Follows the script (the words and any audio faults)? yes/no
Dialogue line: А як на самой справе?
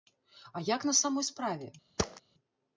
no